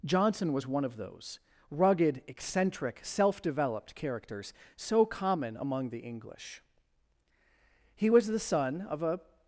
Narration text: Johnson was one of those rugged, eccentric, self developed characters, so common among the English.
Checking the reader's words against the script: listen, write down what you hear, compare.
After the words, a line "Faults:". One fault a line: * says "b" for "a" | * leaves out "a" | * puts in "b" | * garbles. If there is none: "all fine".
Johnson was one of those rugged, eccentric, self developed characters, so common among the English. He was the son of a
Faults:
* puts in "He was the son of a"